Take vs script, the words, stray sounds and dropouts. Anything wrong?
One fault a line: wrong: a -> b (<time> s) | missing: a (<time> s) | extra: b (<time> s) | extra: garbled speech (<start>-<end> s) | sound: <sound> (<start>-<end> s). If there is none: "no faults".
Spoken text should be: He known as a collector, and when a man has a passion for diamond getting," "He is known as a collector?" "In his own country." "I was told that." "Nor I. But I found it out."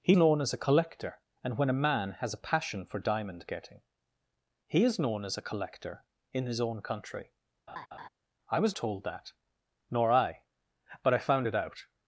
sound: laugh (7.7-8.1 s)